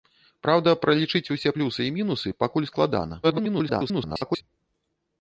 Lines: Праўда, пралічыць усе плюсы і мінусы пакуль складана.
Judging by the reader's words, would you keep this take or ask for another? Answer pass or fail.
fail